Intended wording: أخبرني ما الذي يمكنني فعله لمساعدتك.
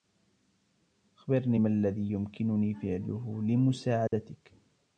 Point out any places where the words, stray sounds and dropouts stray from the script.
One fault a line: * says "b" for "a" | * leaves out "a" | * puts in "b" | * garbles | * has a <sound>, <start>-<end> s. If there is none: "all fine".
* has a dropout, 4.1-4.1 s